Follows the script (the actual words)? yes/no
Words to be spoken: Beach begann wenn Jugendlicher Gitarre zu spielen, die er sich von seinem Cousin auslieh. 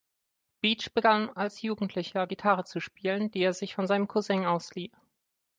no